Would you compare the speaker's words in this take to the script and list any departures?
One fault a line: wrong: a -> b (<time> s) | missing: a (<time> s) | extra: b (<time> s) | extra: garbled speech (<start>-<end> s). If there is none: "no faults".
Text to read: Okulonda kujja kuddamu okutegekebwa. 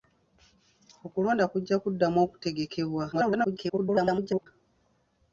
extra: garbled speech (3.1-4.5 s)